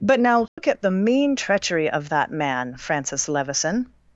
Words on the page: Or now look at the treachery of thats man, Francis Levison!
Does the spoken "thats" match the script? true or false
false